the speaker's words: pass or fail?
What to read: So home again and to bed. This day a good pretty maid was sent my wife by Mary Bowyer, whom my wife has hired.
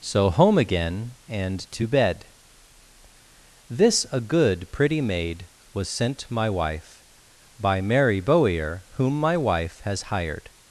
fail